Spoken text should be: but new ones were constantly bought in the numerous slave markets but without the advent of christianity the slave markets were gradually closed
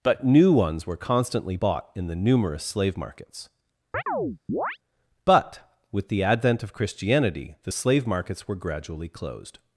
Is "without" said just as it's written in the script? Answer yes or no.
no